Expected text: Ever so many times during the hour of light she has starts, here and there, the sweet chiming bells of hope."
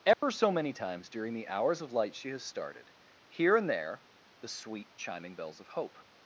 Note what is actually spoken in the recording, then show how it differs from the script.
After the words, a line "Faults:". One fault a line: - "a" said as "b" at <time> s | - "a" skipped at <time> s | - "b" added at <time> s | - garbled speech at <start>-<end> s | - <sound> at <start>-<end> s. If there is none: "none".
Ever so many times during the hours of light she has started, here and there, the sweet chiming bells of hope."
Faults:
- dropout at 0.1-0.2 s
- "hour" said as "hours" at 1.5 s
- "starts" said as "started" at 2.4 s